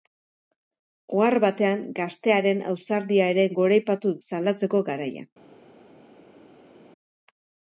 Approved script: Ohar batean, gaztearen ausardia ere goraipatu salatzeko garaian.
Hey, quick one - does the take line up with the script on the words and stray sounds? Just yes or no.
yes